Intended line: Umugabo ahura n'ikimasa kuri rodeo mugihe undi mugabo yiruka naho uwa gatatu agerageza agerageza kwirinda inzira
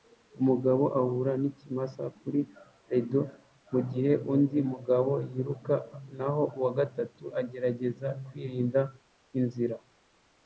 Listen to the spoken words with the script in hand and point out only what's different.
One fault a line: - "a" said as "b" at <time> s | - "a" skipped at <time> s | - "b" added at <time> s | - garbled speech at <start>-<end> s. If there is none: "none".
- "agerageza" skipped at 8.1 s